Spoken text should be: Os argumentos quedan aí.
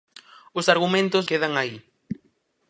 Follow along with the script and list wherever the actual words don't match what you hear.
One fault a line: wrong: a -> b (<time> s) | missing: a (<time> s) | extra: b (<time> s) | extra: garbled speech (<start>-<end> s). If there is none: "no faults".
no faults